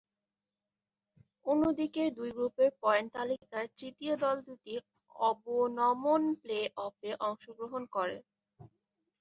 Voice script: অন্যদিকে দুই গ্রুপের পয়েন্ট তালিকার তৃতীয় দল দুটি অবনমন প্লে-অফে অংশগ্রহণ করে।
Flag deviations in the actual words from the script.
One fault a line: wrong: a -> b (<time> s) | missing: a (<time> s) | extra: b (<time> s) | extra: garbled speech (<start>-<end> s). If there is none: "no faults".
no faults